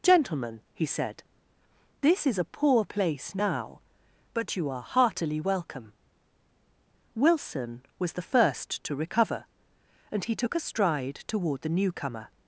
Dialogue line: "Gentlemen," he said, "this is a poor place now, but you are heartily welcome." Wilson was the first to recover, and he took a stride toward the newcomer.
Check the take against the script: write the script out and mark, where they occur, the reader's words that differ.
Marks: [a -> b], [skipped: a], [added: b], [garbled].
"Gentlemen," he said, "this is a poor place now, but you are heartily welcome." Wilson was the first to recover, and he took a stride toward the newcomer.